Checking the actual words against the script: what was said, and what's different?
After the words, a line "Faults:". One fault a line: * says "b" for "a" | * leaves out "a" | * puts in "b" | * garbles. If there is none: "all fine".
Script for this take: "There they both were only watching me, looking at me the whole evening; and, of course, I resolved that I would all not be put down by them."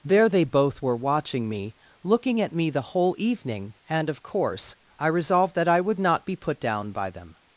"There they both were watching me, looking at me the whole evening; and, of course, I resolved that I would not be put down by them."
Faults:
* leaves out "only"
* leaves out "all"